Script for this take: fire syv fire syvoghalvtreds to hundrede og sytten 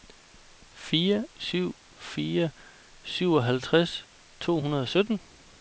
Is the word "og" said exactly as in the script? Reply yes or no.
yes